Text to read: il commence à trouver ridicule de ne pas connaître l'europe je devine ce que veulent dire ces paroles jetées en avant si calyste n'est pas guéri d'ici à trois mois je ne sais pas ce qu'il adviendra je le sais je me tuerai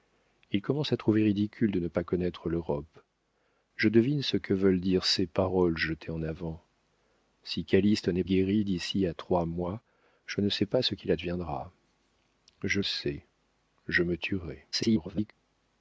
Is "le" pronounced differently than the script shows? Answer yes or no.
yes